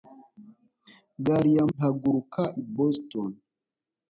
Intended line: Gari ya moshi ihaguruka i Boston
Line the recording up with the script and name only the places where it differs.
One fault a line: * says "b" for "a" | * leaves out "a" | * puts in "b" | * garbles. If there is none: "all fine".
* leaves out "moshi"